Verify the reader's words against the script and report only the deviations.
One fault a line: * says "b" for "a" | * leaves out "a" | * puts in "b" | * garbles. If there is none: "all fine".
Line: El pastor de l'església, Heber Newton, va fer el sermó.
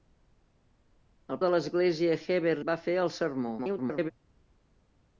* leaves out "pastor"
* leaves out "Newton"
* garbles